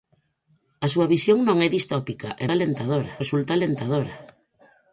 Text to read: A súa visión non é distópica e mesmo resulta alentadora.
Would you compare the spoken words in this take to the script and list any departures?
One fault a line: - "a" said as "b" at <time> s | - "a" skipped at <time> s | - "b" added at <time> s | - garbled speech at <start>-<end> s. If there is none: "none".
- "mesmo" said as "alentadora" at 2.5 s